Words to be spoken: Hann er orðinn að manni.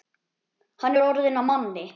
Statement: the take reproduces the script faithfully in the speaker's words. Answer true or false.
true